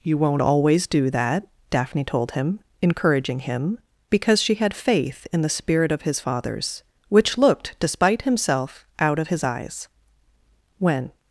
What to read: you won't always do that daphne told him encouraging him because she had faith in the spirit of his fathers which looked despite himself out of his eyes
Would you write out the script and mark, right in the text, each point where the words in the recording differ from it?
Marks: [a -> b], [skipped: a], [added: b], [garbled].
you won't always do that daphne told him encouraging him because she had faith in the spirit of his fathers which looked despite himself out of his eyes [added: when]